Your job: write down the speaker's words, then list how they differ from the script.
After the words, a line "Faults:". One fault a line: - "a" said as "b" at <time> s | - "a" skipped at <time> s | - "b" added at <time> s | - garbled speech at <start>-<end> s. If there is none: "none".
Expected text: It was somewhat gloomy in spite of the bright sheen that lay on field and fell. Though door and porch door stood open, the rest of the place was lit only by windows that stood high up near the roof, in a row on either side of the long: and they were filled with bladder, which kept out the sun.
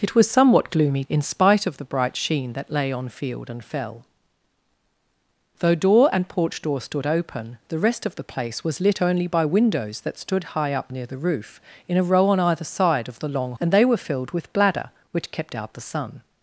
It was somewhat gloomy in spite of the bright sheen that lay on field and fell. Though door and porch door stood open, the rest of the place was lit only by windows that stood high up near the roof, in a row on either side of the long: and they were filled with bladder, which kept out the sun.
Faults:
none